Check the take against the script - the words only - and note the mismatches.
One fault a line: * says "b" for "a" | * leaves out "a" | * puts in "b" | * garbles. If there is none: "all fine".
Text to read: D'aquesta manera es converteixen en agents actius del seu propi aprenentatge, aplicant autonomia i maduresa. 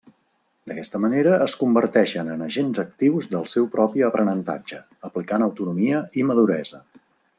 all fine